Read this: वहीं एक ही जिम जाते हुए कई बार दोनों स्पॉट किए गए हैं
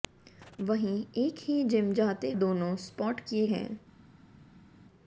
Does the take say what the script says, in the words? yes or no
no